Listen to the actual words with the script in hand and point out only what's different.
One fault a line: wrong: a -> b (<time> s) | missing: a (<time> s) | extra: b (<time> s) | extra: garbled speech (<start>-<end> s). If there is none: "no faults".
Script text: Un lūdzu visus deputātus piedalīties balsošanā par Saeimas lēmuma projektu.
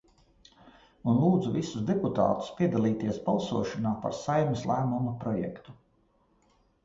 no faults